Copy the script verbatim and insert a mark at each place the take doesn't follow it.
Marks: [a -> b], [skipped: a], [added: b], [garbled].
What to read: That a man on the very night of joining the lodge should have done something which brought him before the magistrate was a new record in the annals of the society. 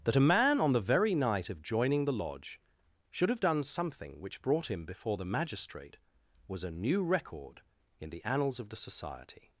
That a man on the very night of joining the lodge should have done something which brought him before the magistrate was a new record in the annals of the society.